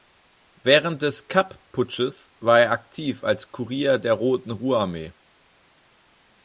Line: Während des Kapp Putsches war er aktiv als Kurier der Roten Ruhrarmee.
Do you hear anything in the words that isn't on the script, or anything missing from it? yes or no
no